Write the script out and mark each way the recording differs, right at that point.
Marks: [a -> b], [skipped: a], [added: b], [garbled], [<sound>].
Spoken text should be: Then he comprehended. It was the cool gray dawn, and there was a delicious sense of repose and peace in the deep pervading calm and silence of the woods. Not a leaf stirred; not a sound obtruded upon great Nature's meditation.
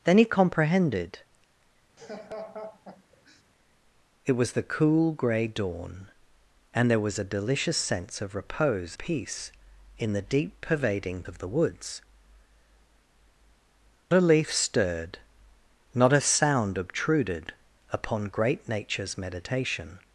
Then he comprehended. [laugh] It was the cool gray dawn, and there was a delicious sense of repose [skipped: and] peace in the deep pervading [skipped: calm and silence] of the woods. [skipped: Not] a leaf stirred; not a sound obtruded upon great Nature's meditation.